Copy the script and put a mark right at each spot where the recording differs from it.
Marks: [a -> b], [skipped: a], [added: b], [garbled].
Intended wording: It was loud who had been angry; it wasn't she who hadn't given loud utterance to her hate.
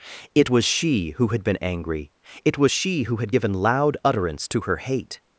It was [loud -> she] who had been angry; it [wasn't -> was] she who [hadn't -> had] given loud utterance to her hate.